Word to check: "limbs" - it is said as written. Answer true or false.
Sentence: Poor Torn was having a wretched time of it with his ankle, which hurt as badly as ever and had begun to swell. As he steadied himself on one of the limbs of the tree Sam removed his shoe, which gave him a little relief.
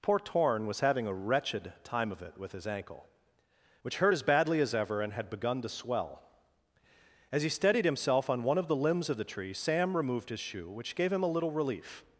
true